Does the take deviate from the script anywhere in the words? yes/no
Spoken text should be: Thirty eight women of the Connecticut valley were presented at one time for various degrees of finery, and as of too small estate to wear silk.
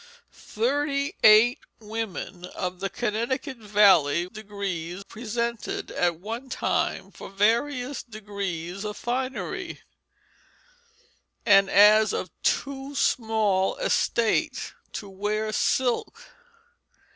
yes